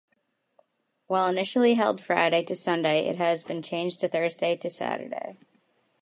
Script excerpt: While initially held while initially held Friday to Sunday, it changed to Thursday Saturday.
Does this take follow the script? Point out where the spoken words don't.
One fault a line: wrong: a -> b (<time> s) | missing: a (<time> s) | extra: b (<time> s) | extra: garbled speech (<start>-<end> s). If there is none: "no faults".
missing: while initially held (2.0 s)
extra: has been (3.2 s)
extra: to (4.6 s)